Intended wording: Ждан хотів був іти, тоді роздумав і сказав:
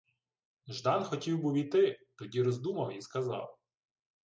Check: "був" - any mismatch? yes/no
no